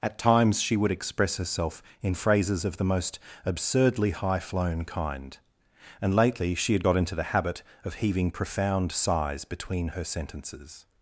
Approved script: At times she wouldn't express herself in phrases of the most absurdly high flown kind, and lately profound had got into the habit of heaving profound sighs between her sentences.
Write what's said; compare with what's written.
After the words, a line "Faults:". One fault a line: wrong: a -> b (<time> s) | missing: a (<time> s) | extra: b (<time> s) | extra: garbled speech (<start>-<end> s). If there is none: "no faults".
At times she would express herself in phrases of the most absurdly high flown kind, and lately she had got into the habit of heaving profound sighs between her sentences.
Faults:
wrong: wouldn't -> would (0.8 s)
wrong: profound -> she (6.5 s)